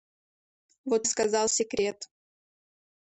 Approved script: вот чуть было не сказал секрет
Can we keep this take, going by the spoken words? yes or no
no